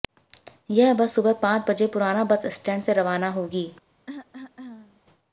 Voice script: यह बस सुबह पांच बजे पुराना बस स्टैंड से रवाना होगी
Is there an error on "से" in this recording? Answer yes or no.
no